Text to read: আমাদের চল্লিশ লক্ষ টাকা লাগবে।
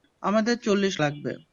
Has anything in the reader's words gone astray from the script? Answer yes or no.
yes